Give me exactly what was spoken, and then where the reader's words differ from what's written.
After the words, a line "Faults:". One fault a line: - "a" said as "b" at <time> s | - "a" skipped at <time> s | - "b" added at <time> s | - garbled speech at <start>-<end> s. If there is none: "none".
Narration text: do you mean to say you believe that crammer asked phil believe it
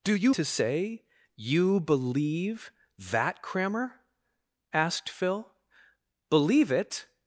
do you to say you believe that crammer asked phil believe it
Faults:
- "mean" skipped at 0.3 s